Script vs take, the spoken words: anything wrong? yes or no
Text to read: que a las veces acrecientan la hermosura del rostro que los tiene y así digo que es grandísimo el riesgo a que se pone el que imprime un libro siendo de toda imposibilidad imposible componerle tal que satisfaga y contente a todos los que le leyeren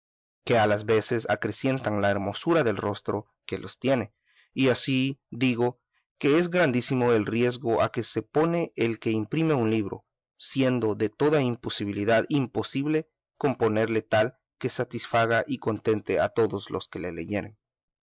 no